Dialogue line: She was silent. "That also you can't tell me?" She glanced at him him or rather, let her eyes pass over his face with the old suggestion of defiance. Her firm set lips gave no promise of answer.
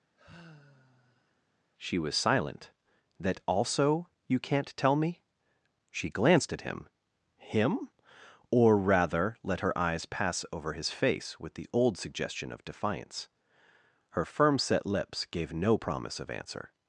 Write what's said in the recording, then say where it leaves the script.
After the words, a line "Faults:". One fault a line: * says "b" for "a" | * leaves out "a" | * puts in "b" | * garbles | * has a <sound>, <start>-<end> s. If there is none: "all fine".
She was silent. "That also you can't tell me?" She glanced at him him or rather, let her eyes pass over his face with the old suggestion of defiance. Her firm set lips gave no promise of answer.
Faults:
* has a sigh, 0.2-1.4 s